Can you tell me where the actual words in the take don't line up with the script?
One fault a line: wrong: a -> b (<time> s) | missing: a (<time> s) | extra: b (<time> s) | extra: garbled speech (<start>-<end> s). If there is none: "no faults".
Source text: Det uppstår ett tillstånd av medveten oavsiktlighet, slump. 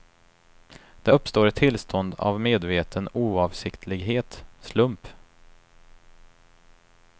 no faults